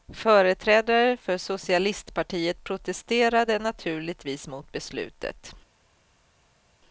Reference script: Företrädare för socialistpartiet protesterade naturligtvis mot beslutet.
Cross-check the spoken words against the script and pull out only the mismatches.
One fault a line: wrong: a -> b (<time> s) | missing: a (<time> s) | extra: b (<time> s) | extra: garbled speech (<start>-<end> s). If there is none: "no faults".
no faults